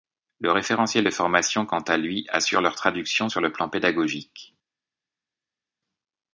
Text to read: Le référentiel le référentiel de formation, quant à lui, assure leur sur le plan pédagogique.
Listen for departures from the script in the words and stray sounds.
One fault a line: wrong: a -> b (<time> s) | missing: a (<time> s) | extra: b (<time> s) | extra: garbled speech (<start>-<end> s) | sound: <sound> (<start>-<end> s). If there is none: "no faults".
missing: le référentiel (1.0 s)
extra: traduction (2.8 s)